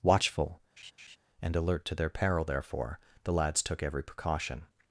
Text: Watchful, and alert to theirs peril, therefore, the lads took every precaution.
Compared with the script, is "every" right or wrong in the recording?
right